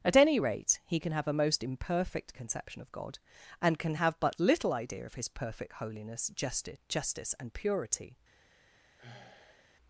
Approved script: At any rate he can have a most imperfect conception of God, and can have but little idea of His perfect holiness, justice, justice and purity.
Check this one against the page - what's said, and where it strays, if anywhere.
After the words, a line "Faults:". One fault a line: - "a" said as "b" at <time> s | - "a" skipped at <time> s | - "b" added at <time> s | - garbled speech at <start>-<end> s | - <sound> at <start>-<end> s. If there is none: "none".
At any rate he can have a most imperfect conception of God, and can have but little idea of His perfect holiness, justice, justice and purity.
Faults:
- sigh at 9.0-9.7 s